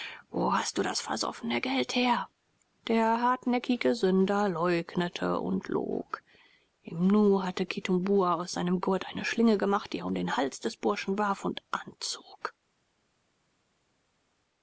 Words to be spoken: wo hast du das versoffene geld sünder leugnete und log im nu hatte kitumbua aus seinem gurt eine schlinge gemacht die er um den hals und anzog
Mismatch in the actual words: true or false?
true